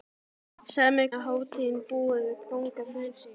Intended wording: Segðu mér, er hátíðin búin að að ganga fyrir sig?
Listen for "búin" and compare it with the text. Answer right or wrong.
right